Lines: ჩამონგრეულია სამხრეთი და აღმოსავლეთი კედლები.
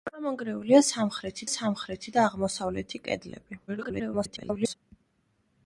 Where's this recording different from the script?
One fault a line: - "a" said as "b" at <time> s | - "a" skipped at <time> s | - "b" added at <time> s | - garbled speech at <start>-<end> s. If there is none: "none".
- "სამხრეთი" added at 1.5 s
- garbled speech at 3.7-4.7 s